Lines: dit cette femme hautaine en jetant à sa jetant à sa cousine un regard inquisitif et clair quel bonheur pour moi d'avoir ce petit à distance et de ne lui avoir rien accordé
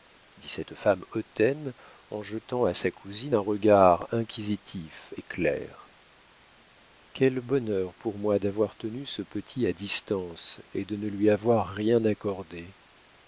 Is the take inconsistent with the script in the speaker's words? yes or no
yes